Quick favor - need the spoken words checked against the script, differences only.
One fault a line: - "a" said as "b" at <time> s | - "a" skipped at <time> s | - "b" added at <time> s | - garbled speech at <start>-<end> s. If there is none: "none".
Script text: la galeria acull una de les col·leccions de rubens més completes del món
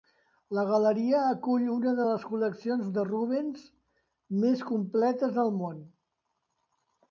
none